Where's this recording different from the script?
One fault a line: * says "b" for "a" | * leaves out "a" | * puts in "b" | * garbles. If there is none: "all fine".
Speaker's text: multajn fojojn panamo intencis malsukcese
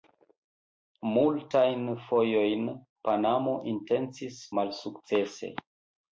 all fine